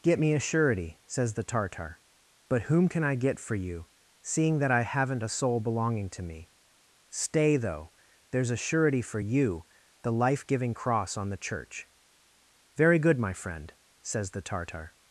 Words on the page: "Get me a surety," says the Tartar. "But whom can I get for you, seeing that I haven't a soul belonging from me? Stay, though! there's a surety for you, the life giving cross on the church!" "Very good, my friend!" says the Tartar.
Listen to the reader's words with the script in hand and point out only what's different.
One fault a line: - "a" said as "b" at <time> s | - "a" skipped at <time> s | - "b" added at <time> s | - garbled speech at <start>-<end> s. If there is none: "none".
- "from" said as "to" at 6.1 s